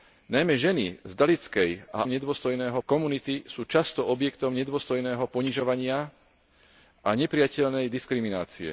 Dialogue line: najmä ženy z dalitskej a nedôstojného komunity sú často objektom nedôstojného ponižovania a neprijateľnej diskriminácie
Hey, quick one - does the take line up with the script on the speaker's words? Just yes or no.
yes